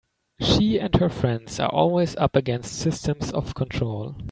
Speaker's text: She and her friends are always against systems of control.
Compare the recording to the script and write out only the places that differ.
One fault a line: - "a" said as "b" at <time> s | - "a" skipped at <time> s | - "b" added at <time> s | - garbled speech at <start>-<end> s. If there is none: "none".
- "up" added at 2.1 s